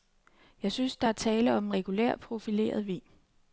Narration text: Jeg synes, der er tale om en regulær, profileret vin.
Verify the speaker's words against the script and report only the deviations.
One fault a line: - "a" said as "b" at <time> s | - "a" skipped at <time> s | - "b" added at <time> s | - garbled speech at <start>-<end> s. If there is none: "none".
none